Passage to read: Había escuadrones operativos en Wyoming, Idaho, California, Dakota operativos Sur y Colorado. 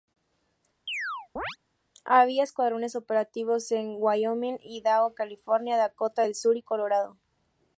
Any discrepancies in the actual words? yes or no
yes